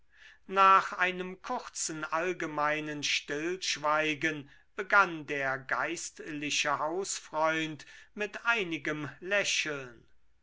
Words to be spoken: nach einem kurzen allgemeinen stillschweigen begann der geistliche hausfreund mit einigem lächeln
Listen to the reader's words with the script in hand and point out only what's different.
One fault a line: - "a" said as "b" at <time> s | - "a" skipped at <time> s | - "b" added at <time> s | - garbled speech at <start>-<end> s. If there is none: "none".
none